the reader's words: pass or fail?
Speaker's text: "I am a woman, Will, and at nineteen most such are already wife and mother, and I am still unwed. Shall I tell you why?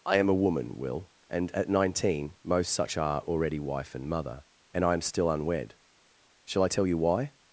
pass